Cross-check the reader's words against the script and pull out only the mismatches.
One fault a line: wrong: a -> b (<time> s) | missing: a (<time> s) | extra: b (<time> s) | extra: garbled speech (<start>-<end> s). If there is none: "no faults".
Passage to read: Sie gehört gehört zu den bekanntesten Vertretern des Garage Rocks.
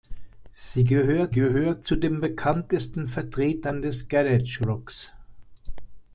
no faults